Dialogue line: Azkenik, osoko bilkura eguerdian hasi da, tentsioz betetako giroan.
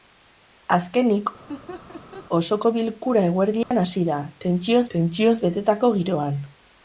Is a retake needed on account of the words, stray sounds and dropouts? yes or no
yes